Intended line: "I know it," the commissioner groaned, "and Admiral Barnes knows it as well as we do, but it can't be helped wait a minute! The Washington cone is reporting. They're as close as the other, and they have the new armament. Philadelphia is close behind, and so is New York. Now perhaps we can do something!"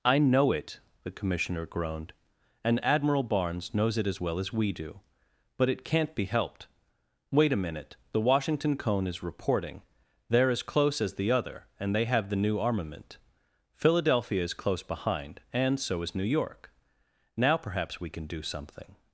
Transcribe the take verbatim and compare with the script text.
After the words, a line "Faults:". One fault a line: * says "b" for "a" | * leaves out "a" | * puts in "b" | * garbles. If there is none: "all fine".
"I know it," the commissioner groaned, "and Admiral Barnes knows it as well as we do, but it can't be helped wait a minute! The Washington cone is reporting. They're as close as the other, and they have the new armament. Philadelphia is close behind, and so is New York. Now perhaps we can do something!"
Faults:
all fine